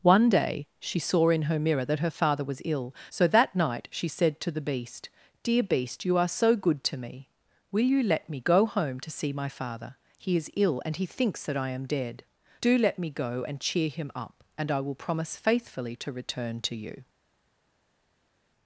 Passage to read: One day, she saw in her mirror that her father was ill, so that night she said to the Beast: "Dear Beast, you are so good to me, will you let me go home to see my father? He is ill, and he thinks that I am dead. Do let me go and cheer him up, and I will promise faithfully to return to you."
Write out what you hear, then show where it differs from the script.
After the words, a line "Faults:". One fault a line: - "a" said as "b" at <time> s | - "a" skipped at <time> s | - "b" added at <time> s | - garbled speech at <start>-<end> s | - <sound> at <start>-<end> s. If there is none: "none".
One day, she saw in her mirror that her father was ill, so that night she said to the Beast: "Dear Beast, you are so good to me, will you let me go home to see my father? He is ill, and he thinks that I am dead. Do let me go and cheer him up, and I will promise faithfully to return to you."
Faults:
none